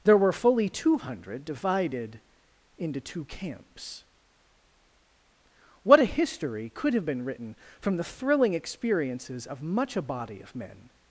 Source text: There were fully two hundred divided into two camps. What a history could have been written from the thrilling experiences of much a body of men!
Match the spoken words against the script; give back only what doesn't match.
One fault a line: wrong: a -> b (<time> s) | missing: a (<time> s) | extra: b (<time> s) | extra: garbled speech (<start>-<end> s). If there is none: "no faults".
no faults